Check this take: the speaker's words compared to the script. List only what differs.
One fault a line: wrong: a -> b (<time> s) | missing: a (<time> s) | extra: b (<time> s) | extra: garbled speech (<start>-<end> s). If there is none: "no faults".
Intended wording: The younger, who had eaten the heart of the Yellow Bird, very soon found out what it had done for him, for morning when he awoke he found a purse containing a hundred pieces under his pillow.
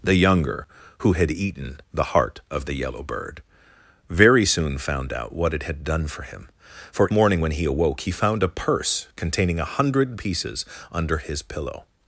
no faults